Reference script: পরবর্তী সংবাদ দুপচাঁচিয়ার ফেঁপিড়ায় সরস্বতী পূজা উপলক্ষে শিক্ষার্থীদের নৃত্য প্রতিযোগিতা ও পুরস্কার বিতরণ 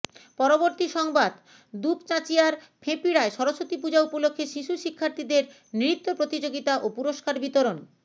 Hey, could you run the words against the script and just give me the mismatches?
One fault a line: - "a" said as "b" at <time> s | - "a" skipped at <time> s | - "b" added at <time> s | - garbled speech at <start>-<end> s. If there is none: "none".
- "শিশু" added at 4.5 s